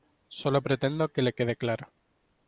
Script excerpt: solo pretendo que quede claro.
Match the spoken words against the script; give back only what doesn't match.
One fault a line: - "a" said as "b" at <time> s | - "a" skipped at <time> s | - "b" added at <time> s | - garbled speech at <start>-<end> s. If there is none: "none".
- "le" added at 1.2 s